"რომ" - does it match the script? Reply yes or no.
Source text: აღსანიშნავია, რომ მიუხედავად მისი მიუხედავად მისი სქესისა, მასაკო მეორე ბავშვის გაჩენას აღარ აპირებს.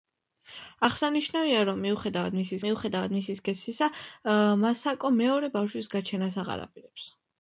yes